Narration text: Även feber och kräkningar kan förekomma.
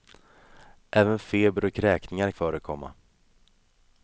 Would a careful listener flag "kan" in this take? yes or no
yes